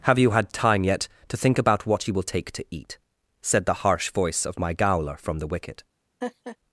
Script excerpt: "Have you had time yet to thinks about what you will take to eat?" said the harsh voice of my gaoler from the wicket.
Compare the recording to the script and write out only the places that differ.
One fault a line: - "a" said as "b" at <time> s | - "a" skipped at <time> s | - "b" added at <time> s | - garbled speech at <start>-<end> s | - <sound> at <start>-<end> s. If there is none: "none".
- "thinks" said as "think" at 1.4 s
- laugh at 6.2-6.6 s